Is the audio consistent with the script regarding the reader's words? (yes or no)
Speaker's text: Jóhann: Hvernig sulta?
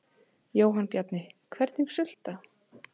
no